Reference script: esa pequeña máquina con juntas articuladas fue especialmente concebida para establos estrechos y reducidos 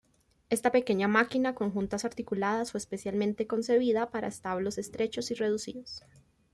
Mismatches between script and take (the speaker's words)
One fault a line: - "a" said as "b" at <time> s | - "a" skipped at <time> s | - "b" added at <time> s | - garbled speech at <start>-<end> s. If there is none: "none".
- "esa" said as "esta" at 0.5 s